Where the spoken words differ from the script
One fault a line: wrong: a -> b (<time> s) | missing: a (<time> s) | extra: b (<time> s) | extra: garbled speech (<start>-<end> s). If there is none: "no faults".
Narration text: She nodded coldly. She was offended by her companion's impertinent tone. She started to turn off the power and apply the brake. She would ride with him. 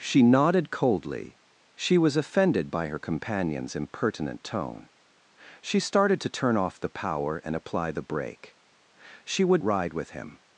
no faults